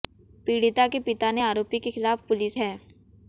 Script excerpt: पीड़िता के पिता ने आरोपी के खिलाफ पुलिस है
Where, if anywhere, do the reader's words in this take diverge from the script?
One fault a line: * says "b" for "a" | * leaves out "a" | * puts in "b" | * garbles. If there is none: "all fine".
all fine